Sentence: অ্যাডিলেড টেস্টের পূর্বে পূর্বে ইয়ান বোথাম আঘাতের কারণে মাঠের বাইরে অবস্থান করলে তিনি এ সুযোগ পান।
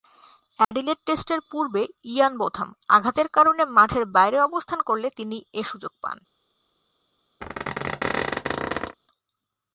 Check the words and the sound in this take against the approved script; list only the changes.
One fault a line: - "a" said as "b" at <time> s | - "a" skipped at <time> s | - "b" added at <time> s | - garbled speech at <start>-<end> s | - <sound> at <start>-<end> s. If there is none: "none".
- dropout at 0.6-0.7 s
- "পূর্বে" skipped at 1.8 s
- squeak at 7.4-9.0 s